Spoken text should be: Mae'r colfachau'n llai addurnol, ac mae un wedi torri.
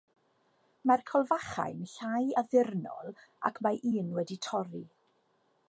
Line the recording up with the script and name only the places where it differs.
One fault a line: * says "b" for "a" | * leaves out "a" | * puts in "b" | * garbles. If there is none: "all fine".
all fine